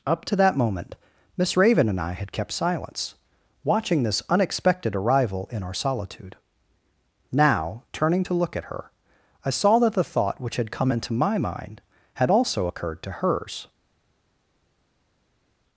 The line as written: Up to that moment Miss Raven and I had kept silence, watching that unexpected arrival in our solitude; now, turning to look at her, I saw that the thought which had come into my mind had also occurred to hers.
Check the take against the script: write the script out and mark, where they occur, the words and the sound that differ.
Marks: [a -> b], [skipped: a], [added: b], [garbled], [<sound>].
Up to that moment Miss Raven and I had kept silence, watching [that -> this] unexpected arrival in our solitude; now, turning to look at her, I saw that the thought which had come into my mind had also occurred to hers.